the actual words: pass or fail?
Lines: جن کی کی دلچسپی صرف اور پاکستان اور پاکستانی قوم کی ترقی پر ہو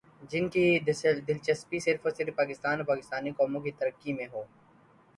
fail